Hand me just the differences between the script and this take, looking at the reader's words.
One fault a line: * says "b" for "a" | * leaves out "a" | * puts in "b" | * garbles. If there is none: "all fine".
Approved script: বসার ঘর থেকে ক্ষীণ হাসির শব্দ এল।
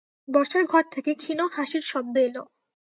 all fine